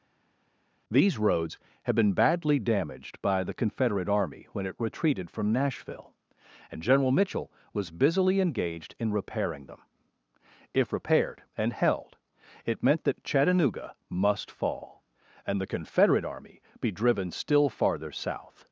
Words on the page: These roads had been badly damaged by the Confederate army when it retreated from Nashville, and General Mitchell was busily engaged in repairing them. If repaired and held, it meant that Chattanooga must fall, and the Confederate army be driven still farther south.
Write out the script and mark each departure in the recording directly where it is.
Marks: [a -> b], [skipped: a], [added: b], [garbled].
These roads had been badly damaged by the Confederate army when it retreated from Nashville, and General Mitchell was busily engaged in repairing them. If repaired and held, it meant that Chattanooga must fall, and the Confederate army be driven still farther south.